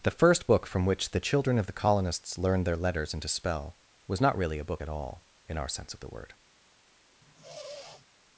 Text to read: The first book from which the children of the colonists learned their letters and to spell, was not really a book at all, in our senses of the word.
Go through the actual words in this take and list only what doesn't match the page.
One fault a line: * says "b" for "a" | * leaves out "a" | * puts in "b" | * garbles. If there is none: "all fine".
* says "sense" for "senses"